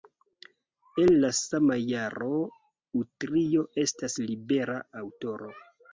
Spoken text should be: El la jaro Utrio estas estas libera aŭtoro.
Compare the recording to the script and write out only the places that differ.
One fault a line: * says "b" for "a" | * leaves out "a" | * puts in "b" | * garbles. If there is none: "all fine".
* puts in "sama"
* leaves out "estas"